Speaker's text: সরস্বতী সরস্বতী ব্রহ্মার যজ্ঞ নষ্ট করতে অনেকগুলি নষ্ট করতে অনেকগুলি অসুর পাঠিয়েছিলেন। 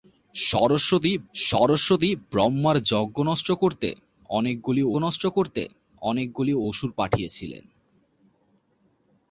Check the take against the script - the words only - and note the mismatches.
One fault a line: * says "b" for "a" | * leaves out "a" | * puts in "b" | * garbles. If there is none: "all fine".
all fine